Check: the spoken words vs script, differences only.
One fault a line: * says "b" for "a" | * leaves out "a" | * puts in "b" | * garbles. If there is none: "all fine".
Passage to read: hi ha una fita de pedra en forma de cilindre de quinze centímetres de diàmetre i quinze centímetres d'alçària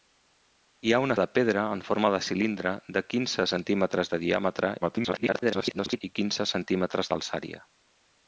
* leaves out "fita"
* garbles